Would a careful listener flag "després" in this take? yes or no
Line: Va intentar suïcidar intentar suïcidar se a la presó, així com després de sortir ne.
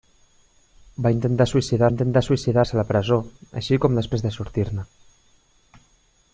no